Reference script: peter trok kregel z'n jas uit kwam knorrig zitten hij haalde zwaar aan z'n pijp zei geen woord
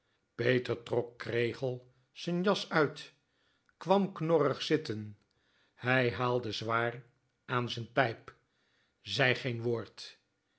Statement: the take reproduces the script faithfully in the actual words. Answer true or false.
true